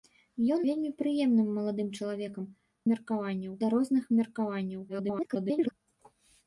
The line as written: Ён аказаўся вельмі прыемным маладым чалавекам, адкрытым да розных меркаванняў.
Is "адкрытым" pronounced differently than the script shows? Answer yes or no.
yes